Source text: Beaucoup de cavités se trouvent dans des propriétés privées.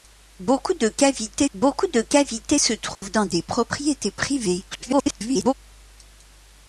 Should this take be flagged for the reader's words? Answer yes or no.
yes